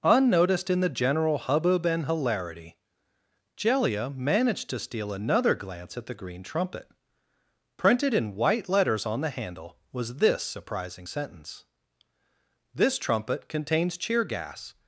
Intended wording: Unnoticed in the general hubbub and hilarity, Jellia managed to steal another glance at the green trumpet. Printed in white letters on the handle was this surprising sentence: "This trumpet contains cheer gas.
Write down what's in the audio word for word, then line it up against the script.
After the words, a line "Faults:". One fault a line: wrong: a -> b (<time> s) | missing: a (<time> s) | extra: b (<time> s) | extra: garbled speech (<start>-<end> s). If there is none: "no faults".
Unnoticed in the general hubbub and hilarity, Jellia managed to steal another glance at the green trumpet. Printed in white letters on the handle was this surprising sentence: "This trumpet contains cheer gas.
Faults:
no faults